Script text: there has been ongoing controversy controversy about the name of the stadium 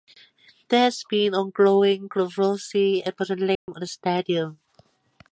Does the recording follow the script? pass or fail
fail